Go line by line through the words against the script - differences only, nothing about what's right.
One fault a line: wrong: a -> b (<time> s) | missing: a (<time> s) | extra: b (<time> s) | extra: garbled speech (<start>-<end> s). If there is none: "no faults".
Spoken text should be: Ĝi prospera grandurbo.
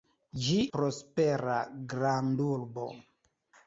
no faults